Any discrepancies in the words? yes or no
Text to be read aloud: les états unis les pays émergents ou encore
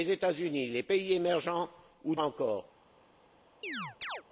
no